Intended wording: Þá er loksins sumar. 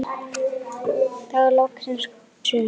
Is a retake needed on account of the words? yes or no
no